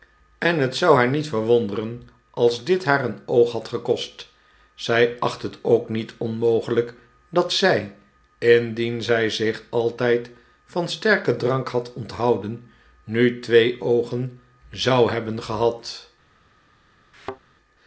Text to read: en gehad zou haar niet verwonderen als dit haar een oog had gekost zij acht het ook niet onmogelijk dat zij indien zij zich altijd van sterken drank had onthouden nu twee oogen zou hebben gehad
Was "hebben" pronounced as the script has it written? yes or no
yes